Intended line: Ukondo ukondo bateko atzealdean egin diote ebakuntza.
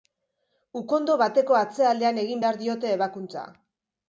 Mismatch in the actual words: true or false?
true